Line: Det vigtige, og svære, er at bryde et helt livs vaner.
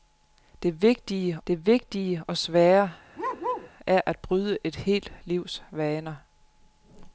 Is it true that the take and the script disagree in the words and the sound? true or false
true